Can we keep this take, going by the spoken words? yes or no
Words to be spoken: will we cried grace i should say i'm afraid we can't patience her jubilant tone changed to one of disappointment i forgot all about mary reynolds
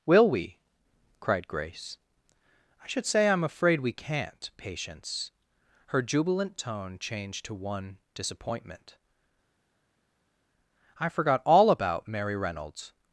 no